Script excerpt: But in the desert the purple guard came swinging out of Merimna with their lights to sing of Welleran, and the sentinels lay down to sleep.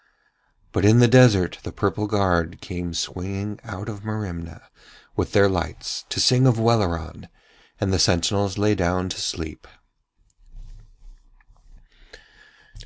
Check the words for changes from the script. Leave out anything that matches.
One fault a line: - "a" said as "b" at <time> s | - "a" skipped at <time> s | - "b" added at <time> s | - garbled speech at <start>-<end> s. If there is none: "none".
none